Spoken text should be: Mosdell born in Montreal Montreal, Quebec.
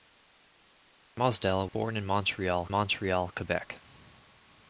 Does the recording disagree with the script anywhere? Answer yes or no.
no